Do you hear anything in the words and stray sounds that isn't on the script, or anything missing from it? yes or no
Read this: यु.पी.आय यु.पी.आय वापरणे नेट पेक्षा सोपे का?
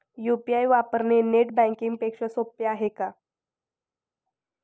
yes